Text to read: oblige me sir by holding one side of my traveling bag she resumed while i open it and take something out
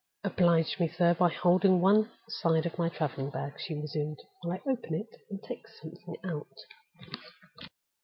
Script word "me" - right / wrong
right